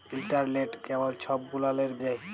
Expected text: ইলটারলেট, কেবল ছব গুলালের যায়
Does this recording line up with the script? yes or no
yes